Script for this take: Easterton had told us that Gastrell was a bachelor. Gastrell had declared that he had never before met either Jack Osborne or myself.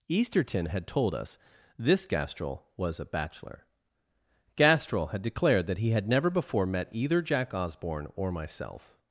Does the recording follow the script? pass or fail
fail